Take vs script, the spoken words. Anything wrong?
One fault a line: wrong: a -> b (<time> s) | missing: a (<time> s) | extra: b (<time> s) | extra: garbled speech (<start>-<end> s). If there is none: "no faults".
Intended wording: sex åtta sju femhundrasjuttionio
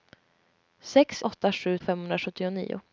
no faults